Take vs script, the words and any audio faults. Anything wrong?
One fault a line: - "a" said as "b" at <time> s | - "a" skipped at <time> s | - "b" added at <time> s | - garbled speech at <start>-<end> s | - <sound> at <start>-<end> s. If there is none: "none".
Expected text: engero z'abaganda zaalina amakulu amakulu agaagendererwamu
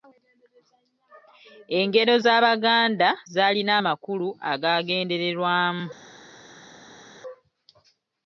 - "amakulu" skipped at 4.3 s